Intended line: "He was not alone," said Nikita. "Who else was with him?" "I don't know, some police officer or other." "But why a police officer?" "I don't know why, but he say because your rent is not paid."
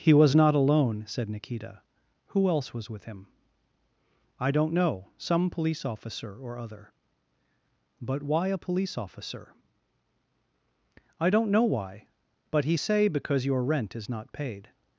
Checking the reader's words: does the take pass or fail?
pass